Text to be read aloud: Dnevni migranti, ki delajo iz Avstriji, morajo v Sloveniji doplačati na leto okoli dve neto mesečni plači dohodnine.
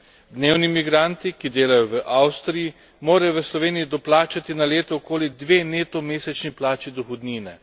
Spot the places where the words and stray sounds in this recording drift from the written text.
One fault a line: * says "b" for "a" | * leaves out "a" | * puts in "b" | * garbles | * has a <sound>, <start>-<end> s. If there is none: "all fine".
* says "v" for "iz"